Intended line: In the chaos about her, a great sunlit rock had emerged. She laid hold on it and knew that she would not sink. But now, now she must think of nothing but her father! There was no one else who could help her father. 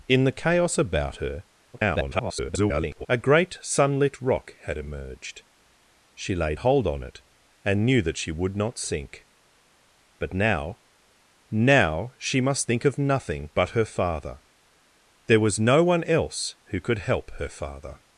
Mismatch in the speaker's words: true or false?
true